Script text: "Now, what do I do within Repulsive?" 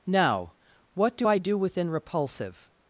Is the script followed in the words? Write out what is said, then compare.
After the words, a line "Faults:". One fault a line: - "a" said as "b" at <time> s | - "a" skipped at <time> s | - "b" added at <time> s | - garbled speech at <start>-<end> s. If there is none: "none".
"Now, what do I do within Repulsive?"
Faults:
none